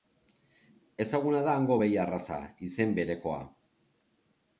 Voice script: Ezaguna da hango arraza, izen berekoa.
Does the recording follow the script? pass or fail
fail